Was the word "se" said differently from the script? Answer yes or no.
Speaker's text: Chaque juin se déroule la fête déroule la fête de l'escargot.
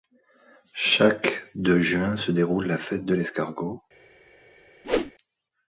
no